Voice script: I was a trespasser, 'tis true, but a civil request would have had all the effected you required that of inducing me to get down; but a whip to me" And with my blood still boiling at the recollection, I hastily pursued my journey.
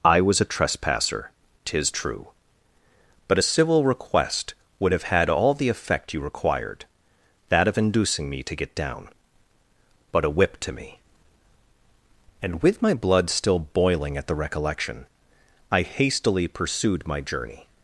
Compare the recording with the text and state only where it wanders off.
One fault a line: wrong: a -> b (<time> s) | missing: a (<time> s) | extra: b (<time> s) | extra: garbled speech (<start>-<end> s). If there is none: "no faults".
wrong: effected -> effect (5.7 s)